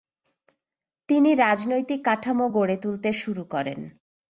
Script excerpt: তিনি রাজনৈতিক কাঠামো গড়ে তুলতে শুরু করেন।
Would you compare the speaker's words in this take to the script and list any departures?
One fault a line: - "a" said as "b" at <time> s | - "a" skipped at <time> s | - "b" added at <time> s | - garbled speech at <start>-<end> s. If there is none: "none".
none